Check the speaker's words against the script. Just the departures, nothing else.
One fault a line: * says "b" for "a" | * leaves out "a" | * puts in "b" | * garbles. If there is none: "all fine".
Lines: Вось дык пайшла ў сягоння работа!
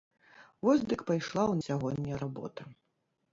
all fine